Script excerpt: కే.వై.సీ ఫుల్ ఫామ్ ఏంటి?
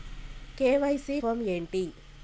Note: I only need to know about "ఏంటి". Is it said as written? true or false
true